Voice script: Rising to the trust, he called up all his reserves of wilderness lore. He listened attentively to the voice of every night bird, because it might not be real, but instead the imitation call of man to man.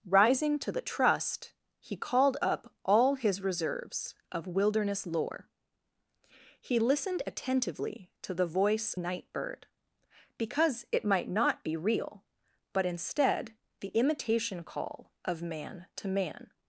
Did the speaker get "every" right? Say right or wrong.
wrong